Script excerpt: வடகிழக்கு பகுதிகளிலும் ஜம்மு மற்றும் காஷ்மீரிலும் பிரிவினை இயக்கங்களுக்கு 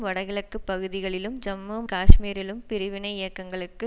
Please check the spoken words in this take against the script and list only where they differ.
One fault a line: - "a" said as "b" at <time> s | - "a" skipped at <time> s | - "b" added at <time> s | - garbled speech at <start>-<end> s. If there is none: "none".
- "மற்றும்" skipped at 1.8 s